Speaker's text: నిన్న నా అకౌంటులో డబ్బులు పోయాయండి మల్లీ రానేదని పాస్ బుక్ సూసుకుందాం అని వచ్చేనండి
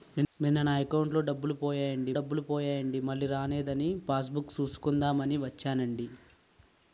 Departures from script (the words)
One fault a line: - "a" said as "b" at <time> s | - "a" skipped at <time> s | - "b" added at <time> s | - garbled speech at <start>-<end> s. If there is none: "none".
- "డబ్బులు పోయాయండి" added at 2.1 s